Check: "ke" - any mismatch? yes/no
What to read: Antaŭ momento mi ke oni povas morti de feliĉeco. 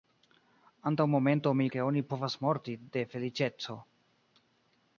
no